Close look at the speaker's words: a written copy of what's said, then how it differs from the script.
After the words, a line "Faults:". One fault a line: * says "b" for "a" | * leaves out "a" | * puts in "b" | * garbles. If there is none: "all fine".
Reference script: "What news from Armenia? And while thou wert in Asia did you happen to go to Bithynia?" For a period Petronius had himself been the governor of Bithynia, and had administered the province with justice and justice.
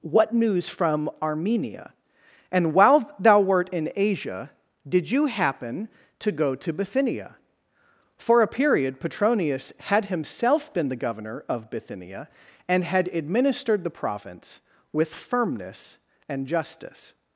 "What news from Armenia? And while thou wert in Asia did you happen to go to Bithynia?" For a period Petronius had himself been the governor of Bithynia, and had administered the province with firmness and justice.
Faults:
* says "firmness" for "justice"